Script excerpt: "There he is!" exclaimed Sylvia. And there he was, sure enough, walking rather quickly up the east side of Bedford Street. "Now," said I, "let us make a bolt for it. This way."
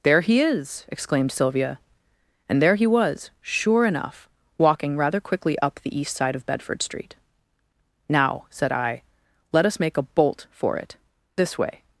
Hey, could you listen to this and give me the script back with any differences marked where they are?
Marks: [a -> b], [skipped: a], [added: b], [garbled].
"There he is!" exclaimed Sylvia. And there he was, sure enough, walking rather quickly up the east side of Bedford Street. "Now," said I, "let us make a bolt for it. This way."